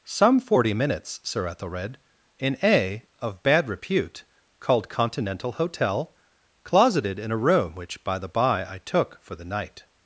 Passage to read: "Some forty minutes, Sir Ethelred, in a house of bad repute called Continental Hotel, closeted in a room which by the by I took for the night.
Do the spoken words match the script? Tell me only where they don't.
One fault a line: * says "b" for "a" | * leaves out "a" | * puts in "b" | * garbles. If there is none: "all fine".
* leaves out "house"